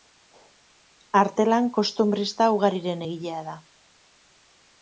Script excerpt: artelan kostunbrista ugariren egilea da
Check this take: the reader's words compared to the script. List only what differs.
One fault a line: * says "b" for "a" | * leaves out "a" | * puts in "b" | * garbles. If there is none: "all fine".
all fine